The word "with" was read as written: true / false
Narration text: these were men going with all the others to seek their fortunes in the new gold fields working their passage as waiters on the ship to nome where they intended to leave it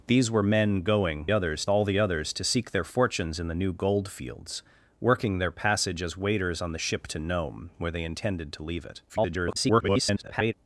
false